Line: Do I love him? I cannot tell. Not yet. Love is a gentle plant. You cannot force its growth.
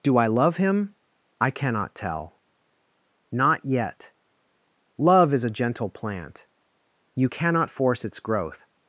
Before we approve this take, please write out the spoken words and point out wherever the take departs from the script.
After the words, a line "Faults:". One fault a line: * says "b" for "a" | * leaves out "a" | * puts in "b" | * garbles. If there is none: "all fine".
Do I love him? I cannot tell. Not yet. Love is a gentle plant. You cannot force its growth.
Faults:
all fine